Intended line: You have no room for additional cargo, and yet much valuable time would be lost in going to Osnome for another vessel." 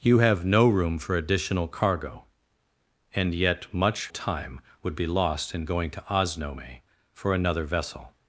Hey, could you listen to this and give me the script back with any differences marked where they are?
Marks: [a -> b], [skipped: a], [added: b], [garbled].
You have no room for additional cargo, and yet much [skipped: valuable] time would be lost in going to Osnome for another vessel."